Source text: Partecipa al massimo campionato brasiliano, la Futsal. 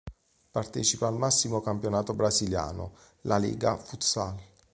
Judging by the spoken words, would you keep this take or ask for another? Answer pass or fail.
fail